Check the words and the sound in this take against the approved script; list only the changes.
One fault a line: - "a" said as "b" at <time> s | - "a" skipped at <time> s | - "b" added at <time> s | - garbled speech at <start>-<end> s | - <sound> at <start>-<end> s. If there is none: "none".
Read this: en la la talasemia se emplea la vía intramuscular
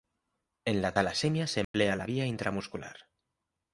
- "la" skipped at 0.9 s
- dropout at 1.6-1.7 s